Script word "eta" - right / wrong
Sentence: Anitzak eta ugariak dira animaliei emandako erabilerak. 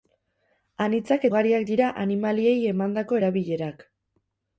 wrong